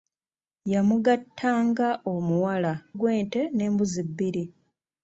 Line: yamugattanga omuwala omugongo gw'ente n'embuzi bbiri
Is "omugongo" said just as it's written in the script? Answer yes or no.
no